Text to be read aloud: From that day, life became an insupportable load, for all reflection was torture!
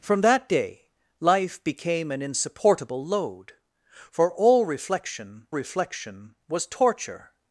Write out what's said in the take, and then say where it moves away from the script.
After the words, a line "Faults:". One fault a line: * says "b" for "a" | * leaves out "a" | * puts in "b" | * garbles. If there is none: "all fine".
From that day, life became an insupportable load, for all reflection reflection was torture!
Faults:
* puts in "reflection"